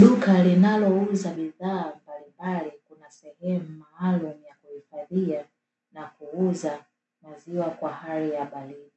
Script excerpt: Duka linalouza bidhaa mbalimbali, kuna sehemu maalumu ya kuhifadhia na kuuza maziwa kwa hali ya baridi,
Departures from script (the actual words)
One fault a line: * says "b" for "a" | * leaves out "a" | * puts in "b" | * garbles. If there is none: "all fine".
all fine